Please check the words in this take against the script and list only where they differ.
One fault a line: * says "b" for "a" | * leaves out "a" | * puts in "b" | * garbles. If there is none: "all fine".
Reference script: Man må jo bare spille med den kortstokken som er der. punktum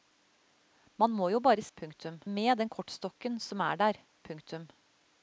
* says "punktum" for "spille"